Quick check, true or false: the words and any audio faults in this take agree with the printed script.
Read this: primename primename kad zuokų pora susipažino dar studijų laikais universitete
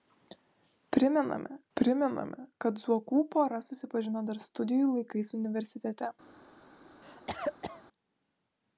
false